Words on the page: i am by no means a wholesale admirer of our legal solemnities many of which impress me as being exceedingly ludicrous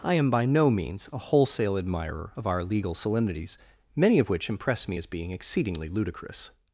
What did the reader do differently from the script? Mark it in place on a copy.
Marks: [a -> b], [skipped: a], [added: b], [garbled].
i am by no means a wholesale admirer of our legal solemnities many of which impress me as being exceedingly ludicrous